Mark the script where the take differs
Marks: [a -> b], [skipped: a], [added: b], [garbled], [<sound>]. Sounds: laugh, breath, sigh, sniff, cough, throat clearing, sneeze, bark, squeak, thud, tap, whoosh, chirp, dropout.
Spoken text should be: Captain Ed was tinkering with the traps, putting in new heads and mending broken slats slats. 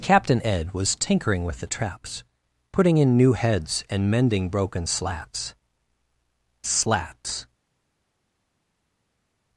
Captain Ed was tinkering with the traps, putting in new heads and mending broken slats slats.